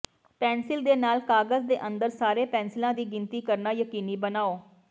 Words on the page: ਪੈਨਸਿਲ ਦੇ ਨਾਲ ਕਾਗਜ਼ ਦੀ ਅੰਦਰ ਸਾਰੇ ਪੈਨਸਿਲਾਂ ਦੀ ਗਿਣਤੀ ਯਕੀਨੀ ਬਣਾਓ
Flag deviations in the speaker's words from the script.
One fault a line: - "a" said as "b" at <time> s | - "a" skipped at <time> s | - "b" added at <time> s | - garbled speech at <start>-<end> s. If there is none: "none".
- "ਦੀ" said as "ਦੇ" at 1.7 s
- "ਕਰਨਾ" added at 3.4 s